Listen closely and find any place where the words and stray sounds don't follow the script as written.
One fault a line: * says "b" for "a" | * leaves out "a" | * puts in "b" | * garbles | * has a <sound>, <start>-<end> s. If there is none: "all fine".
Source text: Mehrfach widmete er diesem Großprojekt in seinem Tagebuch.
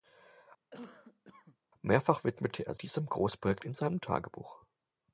* has a cough, 0.7-1.6 s